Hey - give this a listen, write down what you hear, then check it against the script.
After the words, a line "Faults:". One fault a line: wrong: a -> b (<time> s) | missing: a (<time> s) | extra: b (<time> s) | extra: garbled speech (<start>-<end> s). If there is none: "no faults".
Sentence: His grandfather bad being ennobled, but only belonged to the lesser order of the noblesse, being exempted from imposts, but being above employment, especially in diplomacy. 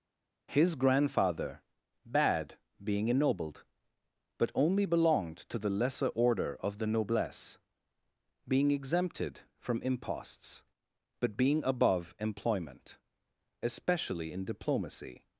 His grandfather bad being ennobled, but only belonged to the lesser order of the noblesse, being exempted from imposts, but being above employment, especially in diplomacy.
Faults:
no faults